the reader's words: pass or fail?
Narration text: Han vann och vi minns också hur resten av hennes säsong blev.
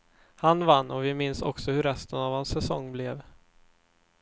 fail